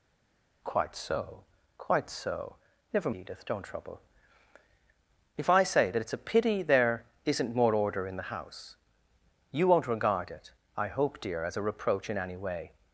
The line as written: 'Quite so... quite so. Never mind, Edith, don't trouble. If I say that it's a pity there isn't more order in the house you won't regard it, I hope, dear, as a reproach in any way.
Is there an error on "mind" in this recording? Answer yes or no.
yes